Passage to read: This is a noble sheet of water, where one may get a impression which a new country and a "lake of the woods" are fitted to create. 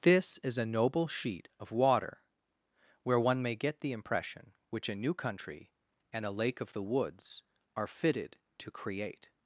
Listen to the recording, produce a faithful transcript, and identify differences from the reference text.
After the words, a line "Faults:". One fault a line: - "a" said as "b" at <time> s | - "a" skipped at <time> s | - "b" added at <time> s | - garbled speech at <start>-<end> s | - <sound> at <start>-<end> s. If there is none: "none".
This is a noble sheet of water, where one may get the impression which a new country and a "lake of the woods" are fitted to create.
Faults:
- "a" said as "the" at 3.8 s